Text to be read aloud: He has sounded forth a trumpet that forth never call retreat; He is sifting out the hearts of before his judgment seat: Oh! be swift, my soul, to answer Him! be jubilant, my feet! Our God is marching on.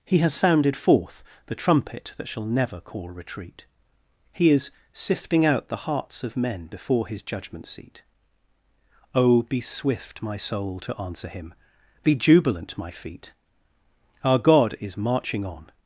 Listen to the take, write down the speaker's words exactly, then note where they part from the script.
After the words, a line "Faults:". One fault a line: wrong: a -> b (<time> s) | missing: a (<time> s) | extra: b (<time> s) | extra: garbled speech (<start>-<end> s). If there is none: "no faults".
He has sounded forth the trumpet that shall never call retreat; He is sifting out the hearts of men before his judgment seat: Oh! be swift, my soul, to answer Him! be jubilant, my feet! Our God is marching on.
Faults:
wrong: a -> the (1.4 s)
wrong: forth -> shall (2.3 s)
extra: men (6.4 s)